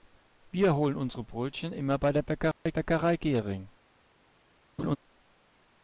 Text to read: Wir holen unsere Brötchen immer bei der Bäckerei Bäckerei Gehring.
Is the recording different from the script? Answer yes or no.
no